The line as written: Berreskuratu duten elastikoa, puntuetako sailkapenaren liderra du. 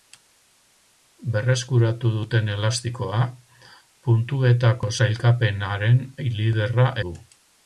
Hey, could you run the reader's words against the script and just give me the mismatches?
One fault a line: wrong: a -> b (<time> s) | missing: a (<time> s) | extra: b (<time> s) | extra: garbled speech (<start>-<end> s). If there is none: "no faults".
no faults